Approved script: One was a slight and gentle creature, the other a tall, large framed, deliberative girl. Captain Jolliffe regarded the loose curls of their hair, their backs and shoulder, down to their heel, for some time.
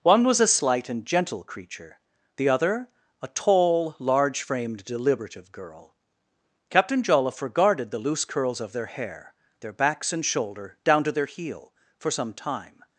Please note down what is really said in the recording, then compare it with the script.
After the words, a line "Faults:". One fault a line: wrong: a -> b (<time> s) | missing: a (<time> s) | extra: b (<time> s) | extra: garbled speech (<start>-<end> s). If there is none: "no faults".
One was a slight and gentle creature, the other a tall, large framed, deliberative girl. Captain Jolliffe regarded the loose curls of their hair, their backs and shoulder, down to their heel, for some time.
Faults:
no faults